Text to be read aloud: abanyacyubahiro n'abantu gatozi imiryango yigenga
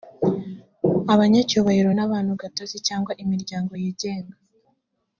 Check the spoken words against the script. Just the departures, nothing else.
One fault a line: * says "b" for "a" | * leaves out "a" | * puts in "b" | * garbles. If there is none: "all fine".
* puts in "cyangwa"